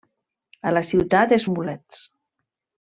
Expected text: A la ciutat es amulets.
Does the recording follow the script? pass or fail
pass